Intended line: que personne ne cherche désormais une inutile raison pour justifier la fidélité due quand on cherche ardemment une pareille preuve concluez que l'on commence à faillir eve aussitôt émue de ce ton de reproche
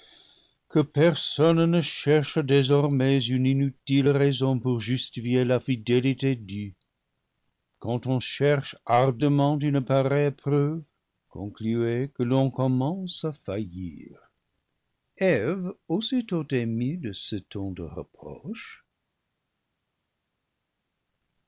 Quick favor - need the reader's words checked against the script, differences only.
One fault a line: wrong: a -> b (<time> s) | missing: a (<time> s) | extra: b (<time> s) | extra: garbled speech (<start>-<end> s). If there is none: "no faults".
no faults